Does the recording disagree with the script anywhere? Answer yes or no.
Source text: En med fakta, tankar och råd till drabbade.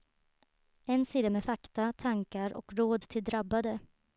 yes